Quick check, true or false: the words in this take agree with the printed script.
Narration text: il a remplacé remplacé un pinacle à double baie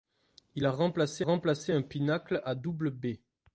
true